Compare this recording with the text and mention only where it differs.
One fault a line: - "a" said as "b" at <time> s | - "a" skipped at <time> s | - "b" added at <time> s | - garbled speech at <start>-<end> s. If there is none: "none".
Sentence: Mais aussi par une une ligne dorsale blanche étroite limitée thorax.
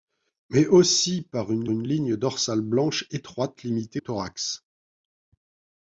none